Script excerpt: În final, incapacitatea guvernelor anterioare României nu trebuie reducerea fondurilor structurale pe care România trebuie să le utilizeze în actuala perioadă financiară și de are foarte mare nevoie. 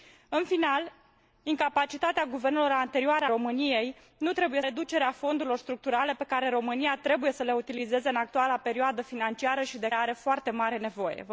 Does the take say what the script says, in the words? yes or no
yes